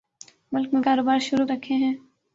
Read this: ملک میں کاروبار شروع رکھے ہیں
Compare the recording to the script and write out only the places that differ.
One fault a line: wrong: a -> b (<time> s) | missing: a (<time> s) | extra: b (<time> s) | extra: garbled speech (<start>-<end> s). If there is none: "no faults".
no faults